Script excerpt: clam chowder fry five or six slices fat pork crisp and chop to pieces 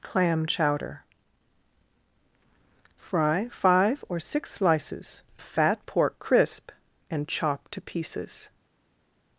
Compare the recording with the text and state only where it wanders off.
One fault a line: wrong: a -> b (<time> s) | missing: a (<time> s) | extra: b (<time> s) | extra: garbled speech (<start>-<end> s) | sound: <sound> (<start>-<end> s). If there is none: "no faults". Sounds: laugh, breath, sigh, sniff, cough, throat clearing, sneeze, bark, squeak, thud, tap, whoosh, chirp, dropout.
no faults